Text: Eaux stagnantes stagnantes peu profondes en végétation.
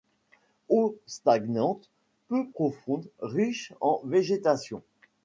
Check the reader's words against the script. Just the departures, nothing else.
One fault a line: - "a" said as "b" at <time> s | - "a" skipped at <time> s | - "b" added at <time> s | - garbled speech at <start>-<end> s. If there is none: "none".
- "stagnantes" skipped at 1.9 s
- "riches" added at 3.2 s